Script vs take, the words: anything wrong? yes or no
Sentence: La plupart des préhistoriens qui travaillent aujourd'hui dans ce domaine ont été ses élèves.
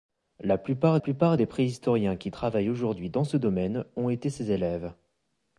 yes